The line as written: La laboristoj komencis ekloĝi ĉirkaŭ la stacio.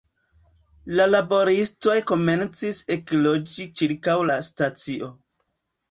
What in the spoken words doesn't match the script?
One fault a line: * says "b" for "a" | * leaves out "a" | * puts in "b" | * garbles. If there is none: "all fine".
all fine